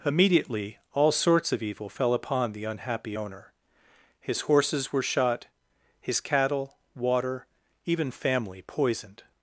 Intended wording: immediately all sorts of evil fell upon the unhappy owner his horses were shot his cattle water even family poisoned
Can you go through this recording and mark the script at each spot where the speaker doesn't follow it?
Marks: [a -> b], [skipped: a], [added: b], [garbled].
immediately all sorts of evil fell upon the unhappy owner his horses were shot his cattle water even family poisoned